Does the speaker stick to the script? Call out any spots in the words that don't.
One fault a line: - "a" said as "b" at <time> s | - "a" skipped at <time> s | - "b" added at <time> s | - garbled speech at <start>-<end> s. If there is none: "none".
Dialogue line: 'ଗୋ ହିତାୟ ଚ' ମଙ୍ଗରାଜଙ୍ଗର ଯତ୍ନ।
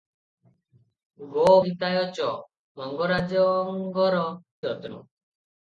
none